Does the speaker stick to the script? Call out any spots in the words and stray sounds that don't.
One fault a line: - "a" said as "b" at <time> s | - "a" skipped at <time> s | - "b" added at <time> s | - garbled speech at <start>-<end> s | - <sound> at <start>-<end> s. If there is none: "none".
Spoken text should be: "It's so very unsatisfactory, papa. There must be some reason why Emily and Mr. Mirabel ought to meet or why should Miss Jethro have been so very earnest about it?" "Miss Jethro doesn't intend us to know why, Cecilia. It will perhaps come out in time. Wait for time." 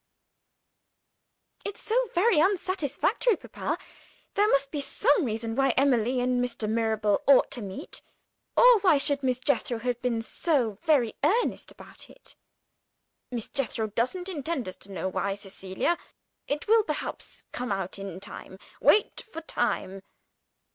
none